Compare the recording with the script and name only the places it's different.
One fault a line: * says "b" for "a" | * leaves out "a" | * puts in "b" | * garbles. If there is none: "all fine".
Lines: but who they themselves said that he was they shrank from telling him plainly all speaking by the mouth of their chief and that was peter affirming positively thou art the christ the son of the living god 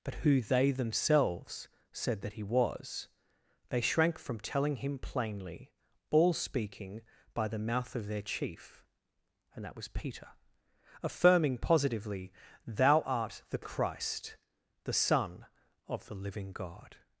all fine